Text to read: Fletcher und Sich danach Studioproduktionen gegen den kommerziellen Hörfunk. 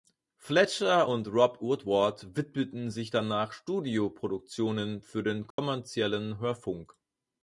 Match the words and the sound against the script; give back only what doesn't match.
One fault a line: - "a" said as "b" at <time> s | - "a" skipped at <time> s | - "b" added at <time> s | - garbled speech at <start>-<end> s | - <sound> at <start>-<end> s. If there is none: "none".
- "Rob Woodward widmeten" added at 1.3 s
- "gegen" said as "für" at 5.0 s
- dropout at 5.5-5.6 s